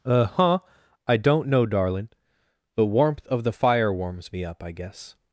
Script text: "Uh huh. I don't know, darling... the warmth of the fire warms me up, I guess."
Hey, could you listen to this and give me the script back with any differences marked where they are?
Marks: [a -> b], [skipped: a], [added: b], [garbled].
"Uh huh. I don't know, darling... the warmth of the fire warms me up, I guess."